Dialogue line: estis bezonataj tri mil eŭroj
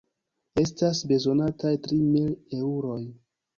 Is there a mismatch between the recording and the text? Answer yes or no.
yes